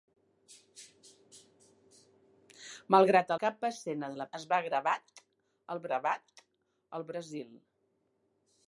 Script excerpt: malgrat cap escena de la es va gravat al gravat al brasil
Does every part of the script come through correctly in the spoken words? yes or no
yes